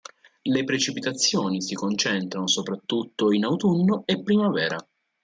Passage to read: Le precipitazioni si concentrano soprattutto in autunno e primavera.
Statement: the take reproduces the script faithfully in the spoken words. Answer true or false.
true